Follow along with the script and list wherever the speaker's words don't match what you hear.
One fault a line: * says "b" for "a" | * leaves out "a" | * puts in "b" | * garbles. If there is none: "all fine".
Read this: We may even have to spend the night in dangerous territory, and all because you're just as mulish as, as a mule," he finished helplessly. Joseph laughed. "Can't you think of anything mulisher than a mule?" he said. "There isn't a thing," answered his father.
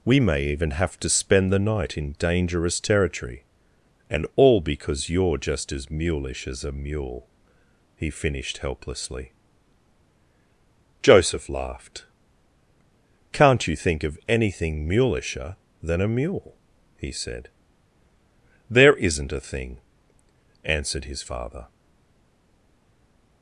* leaves out "as"